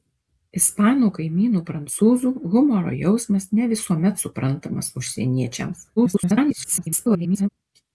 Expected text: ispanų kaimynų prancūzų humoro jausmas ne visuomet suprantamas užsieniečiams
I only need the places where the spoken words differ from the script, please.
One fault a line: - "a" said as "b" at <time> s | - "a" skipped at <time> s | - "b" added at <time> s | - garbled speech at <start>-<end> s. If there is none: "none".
- garbled speech at 6.0-7.5 s